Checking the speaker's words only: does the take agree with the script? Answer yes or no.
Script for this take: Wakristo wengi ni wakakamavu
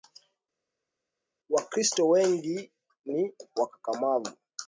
yes